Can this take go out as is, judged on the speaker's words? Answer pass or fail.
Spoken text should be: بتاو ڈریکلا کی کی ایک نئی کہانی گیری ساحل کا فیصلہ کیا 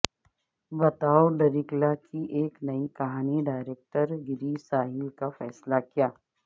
fail